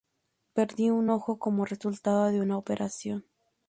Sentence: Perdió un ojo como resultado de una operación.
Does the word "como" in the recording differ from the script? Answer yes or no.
no